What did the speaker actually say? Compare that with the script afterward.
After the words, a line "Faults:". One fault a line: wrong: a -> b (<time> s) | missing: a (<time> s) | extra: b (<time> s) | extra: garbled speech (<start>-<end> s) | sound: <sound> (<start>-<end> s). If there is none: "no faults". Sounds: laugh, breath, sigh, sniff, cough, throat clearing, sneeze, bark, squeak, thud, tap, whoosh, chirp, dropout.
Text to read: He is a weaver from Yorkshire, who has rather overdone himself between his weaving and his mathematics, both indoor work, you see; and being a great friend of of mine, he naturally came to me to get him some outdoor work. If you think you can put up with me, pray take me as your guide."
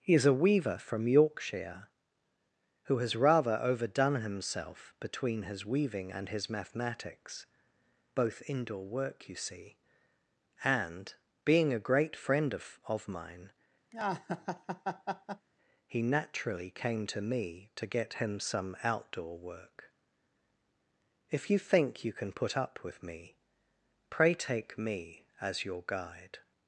He is a weaver from Yorkshire, who has rather overdone himself between his weaving and his mathematics, both indoor work, you see; and being a great friend of of mine, he naturally came to me to get him some outdoor work. If you think you can put up with me, pray take me as your guide."
Faults:
sound: laugh (13.9-15.5 s)